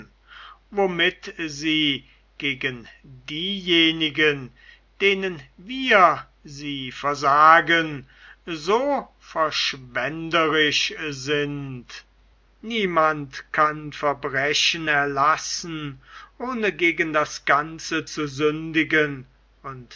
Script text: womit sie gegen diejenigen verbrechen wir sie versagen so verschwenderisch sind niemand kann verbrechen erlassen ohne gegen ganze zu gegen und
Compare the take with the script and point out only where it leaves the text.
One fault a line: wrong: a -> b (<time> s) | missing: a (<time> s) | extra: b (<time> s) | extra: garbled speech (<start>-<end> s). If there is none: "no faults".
wrong: verbrechen -> denen (5.0 s)
extra: das (17.1 s)
wrong: gegen -> sündigen (18.3 s)